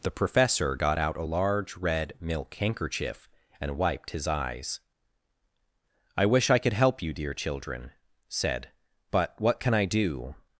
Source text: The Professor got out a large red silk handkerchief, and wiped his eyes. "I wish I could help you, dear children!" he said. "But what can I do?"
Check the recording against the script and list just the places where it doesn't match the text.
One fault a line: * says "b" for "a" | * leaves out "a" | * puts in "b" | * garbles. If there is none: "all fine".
* says "milk" for "silk"
* leaves out "he"